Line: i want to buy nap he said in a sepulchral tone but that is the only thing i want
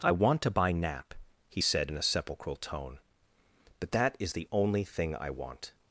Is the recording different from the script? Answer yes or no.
no